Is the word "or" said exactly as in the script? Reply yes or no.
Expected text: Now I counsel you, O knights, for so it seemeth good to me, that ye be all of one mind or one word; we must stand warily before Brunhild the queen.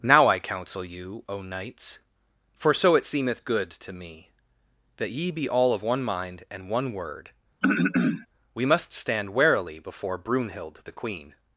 no